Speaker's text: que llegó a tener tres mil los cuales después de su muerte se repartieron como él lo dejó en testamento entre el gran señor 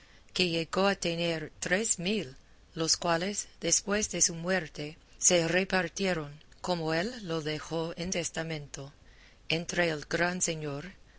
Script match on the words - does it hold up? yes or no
yes